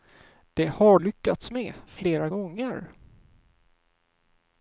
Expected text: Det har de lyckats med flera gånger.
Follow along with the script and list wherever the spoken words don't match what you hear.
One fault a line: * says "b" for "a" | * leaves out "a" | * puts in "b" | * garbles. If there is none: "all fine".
* leaves out "de"